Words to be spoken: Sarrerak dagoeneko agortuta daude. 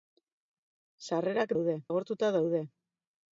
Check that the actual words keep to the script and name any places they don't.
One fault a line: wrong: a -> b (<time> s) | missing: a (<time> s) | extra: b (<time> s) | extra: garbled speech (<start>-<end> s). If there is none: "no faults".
wrong: dagoeneko -> daude (1.6 s)